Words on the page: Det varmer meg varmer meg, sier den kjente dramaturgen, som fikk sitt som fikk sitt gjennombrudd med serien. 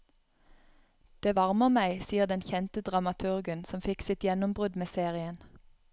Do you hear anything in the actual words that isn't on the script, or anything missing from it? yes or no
yes